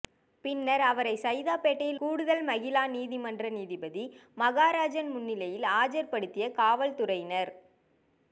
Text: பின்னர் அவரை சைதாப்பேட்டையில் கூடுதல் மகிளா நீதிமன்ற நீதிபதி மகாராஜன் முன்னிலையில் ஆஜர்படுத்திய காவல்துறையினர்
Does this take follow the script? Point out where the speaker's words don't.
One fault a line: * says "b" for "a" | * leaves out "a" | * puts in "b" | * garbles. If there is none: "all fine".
all fine